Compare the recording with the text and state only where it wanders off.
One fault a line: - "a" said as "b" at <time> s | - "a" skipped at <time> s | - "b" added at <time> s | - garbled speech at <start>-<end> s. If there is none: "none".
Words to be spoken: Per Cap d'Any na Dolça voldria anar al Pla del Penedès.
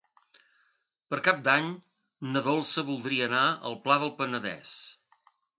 none